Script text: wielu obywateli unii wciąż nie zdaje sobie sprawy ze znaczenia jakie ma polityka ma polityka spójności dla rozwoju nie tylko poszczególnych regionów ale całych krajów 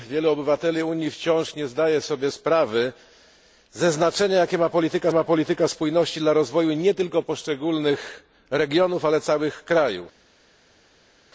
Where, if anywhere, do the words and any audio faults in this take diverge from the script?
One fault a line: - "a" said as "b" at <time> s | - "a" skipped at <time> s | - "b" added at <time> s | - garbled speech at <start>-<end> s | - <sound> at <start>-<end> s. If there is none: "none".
none